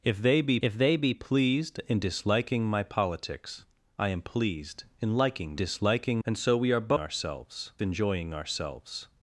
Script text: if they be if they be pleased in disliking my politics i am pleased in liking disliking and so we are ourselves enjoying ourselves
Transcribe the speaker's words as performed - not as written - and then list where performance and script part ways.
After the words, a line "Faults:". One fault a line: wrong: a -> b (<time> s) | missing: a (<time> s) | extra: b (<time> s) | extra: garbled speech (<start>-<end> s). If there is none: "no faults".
if they be if they be pleased in disliking my politics i am pleased in liking disliking and so we are ourselves enjoying ourselves
Faults:
no faults